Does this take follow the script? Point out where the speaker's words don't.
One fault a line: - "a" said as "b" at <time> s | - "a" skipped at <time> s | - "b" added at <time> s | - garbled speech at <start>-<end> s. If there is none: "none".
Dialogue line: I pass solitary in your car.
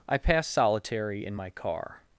- "your" said as "my" at 1.3 s